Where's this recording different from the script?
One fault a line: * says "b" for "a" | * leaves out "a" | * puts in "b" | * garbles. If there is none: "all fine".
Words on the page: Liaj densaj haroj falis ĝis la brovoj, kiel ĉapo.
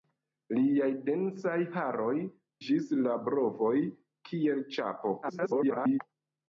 * leaves out "falis"
* garbles